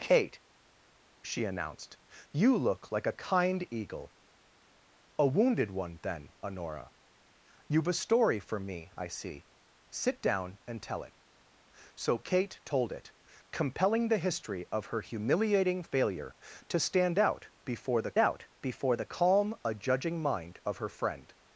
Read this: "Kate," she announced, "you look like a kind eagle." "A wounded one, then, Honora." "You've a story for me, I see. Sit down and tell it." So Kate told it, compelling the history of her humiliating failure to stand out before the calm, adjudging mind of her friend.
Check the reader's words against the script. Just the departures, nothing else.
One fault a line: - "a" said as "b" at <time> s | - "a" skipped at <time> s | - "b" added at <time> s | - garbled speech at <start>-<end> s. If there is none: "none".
- "out before the" added at 18.2 s